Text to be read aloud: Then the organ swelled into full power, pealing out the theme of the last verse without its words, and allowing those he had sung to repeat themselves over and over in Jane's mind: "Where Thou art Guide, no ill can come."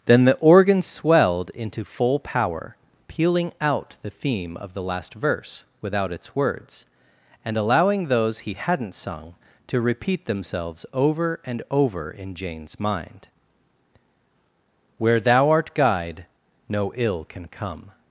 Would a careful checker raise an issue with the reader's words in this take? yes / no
yes